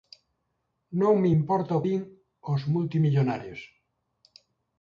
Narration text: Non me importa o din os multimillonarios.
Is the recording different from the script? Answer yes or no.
no